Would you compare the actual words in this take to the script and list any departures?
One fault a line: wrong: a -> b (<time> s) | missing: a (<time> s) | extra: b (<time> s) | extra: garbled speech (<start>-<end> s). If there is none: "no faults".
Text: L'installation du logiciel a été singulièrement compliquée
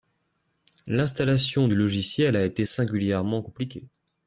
no faults